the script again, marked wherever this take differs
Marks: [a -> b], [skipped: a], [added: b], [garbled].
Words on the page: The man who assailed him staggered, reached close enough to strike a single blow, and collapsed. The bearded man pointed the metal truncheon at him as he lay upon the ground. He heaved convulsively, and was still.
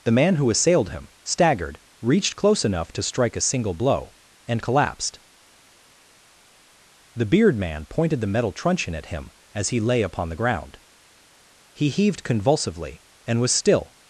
The man who assailed him staggered, reached close enough to strike a single blow, and collapsed. The [bearded -> beard] man pointed the metal truncheon at him as he lay upon the ground. He heaved convulsively, and was still.